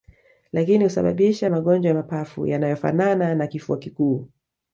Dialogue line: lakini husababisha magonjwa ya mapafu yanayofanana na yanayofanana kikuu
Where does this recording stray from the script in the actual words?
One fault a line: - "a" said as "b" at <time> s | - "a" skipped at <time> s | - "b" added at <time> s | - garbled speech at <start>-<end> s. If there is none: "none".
- "yanayofanana" said as "kifua" at 3.4 s